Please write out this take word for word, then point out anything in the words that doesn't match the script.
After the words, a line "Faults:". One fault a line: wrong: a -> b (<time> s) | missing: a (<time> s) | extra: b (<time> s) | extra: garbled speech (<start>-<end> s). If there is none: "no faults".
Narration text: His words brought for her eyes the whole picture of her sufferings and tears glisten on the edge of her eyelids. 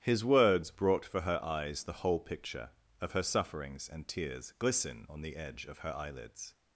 His words brought for her eyes the whole picture of her sufferings and tears glisten on the edge of her eyelids.
Faults:
no faults